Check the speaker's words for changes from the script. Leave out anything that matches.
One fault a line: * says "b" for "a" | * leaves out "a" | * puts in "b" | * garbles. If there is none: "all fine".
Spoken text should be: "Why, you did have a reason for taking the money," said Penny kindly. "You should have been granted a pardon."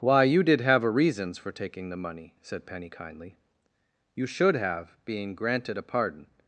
* says "reasons" for "reason"
* says "being" for "been"